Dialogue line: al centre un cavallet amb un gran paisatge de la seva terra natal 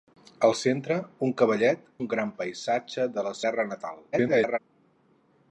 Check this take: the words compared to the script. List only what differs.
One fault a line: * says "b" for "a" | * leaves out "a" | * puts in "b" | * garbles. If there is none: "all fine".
* leaves out "amb"
* leaves out "seva"
* garbles